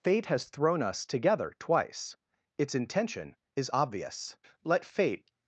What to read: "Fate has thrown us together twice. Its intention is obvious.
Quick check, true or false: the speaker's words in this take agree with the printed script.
false